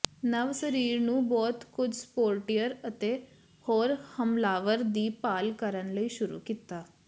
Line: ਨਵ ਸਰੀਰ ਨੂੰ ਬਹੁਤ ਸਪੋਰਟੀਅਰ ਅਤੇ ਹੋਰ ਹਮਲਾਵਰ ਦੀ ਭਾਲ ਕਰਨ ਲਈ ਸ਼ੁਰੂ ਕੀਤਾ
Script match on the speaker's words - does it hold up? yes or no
no